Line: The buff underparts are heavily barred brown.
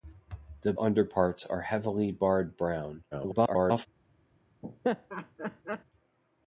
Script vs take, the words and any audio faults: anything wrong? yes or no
yes